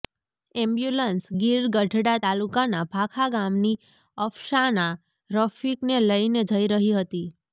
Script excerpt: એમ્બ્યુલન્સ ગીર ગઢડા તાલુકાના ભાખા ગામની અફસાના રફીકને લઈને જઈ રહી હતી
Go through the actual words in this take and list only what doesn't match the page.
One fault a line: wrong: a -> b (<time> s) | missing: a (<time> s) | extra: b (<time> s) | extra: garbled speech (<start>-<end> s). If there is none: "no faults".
no faults